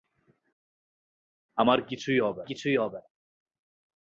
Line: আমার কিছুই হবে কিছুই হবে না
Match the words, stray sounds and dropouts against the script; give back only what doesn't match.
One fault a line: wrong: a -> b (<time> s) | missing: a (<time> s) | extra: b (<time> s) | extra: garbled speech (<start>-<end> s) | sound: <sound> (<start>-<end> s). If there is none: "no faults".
no faults